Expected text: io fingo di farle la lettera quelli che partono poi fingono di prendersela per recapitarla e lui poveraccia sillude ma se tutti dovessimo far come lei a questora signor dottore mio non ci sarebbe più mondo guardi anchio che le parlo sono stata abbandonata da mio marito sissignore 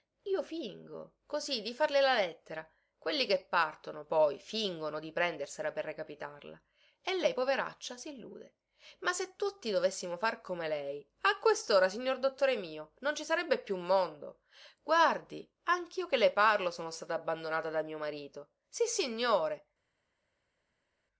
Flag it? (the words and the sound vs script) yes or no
yes